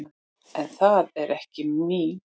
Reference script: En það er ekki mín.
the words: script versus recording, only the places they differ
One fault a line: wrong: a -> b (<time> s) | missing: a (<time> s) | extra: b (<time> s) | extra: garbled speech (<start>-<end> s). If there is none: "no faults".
no faults